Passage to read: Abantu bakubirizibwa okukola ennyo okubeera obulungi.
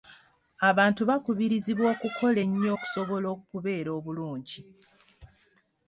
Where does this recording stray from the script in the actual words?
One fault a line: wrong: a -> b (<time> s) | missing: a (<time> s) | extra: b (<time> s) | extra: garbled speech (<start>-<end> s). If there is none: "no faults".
extra: okusobola (2.7 s)